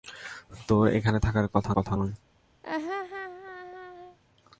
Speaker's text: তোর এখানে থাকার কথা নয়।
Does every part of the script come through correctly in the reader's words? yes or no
no